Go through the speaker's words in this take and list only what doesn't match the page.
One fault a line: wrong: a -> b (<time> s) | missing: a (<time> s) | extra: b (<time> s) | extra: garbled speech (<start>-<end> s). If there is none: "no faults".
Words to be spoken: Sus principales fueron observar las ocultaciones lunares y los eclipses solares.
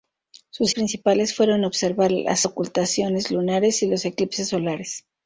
no faults